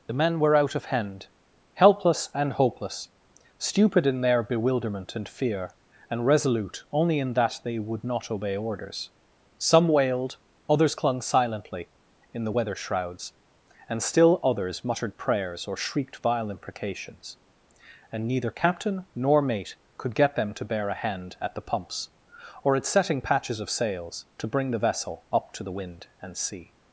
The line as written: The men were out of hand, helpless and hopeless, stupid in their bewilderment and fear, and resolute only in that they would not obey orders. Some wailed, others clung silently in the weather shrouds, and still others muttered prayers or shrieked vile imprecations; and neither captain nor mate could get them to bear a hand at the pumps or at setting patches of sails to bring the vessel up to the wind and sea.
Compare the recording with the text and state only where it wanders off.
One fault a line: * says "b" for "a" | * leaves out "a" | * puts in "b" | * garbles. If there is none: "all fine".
all fine